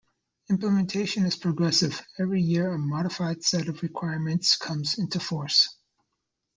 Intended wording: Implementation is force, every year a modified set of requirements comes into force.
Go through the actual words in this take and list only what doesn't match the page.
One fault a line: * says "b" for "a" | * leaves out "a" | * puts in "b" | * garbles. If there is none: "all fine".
* says "progressive" for "force"